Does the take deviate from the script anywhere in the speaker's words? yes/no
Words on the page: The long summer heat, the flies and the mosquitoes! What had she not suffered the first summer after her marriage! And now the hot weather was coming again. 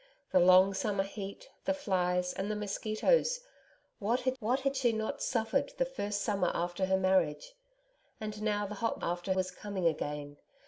yes